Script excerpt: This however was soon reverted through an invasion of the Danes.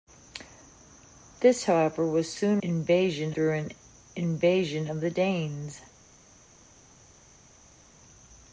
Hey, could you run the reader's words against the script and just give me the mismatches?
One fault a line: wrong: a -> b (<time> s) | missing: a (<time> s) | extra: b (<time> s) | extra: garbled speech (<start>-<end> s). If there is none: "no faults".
wrong: reverted -> invasion (2.6 s)